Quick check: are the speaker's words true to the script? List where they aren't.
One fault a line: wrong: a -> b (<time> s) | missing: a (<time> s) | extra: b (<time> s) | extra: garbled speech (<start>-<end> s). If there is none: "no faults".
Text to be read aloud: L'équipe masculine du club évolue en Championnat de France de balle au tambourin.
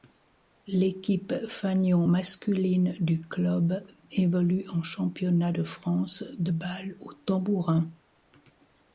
extra: fanion (1.5 s)